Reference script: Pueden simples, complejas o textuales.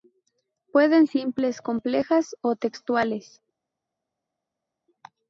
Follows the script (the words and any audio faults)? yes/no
yes